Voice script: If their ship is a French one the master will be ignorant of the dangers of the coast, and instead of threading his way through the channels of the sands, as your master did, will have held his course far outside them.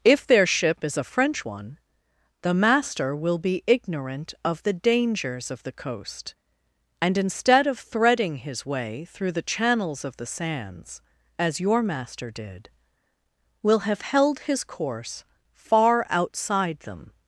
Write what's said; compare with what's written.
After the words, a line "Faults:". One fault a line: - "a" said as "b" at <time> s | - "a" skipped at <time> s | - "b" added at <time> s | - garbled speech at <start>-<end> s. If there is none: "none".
If their ship is a French one the master will be ignorant of the dangers of the coast, and instead of threading his way through the channels of the sands, as your master did, will have held his course far outside them.
Faults:
none